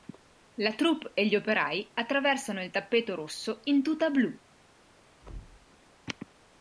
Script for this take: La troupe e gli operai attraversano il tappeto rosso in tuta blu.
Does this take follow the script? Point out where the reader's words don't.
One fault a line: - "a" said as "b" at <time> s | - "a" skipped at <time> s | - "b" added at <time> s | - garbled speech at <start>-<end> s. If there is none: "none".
none